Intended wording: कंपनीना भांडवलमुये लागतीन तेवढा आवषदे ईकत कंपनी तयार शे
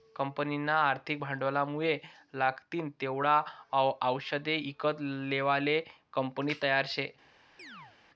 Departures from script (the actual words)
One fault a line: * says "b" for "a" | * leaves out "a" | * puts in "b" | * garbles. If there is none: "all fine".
* puts in "आर्थिक"
* puts in "लेवाले"